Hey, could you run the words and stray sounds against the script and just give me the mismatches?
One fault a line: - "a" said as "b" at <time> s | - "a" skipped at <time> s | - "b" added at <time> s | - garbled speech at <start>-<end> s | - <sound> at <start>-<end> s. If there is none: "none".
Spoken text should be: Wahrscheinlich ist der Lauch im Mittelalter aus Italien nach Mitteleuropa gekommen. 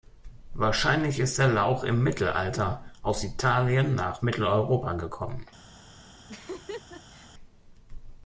- laugh at 6.3-7.3 s